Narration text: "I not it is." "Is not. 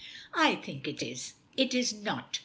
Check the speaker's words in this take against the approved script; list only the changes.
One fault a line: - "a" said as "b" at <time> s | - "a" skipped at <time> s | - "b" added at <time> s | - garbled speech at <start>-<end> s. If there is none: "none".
- "not" said as "think" at 0.6 s
- "It" added at 1.6 s